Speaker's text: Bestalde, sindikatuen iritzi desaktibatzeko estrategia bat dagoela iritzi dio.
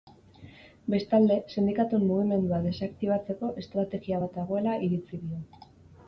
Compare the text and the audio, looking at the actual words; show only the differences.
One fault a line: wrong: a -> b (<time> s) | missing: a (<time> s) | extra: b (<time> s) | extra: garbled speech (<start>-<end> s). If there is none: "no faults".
wrong: iritzi -> mugimendua (2.1 s)